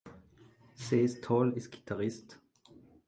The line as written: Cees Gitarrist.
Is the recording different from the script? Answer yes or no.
yes